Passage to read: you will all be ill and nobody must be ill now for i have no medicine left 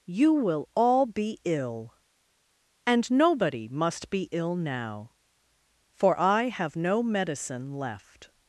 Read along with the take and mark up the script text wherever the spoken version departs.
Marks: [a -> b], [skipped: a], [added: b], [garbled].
you will all be ill and nobody must be ill now for i have no medicine left